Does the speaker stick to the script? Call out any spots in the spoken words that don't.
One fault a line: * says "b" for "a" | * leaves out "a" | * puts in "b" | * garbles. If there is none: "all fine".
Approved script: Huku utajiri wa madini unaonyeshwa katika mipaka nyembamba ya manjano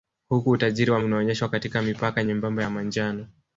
* leaves out "madini"